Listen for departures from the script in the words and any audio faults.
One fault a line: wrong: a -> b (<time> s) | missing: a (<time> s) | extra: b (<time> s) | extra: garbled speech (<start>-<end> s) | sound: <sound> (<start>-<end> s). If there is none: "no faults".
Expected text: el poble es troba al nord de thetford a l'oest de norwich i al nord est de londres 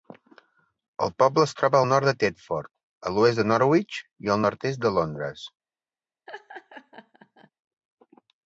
sound: laugh (6.3-7.5 s)